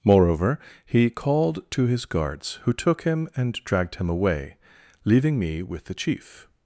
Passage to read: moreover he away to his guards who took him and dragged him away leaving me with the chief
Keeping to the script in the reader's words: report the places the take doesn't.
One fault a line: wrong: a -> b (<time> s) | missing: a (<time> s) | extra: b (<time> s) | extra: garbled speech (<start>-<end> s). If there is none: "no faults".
wrong: away -> called (1.1 s)